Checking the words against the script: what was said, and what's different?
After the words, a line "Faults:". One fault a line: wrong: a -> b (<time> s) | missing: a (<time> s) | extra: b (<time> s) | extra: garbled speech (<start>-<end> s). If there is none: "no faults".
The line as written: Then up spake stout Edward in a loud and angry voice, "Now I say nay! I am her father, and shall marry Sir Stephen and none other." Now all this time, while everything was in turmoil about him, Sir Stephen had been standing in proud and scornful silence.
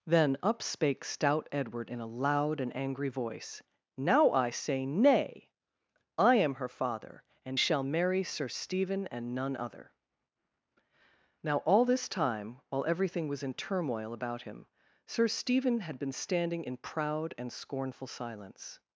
Then up spake stout Edward in a loud and angry voice, "Now I say nay! I am her father, and shall marry Sir Stephen and none other." Now all this time, while everything was in turmoil about him, Sir Stephen had been standing in proud and scornful silence.
Faults:
no faults